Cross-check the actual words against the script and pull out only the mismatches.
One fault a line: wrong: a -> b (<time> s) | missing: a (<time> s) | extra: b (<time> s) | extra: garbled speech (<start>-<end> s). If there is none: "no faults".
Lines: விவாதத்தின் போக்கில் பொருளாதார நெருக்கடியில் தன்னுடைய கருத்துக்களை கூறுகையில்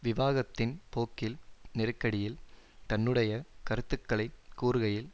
missing: பொருளாதார (1.4 s)